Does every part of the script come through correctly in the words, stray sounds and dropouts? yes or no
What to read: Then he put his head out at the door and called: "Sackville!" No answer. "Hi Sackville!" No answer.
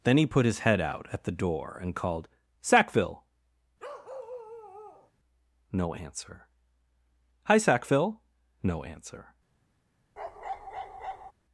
no